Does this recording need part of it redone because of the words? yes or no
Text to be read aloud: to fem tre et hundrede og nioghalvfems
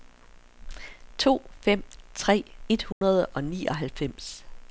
no